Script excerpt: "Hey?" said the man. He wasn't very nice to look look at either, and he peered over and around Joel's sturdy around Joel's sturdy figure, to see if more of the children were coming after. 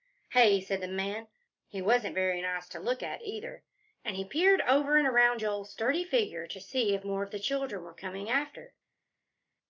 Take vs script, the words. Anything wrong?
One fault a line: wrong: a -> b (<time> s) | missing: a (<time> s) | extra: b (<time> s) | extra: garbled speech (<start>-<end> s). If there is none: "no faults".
missing: look (3.0 s)
missing: around Joel's sturdy (6.0 s)